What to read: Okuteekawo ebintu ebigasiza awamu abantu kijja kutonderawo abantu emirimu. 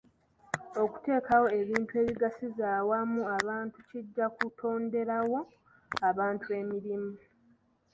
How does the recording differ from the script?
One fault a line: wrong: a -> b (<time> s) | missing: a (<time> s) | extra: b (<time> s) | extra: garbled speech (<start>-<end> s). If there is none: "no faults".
no faults